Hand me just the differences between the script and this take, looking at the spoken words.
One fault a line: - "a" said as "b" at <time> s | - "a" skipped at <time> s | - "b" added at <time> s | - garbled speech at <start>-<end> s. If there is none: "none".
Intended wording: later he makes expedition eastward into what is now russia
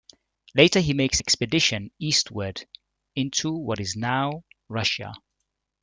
none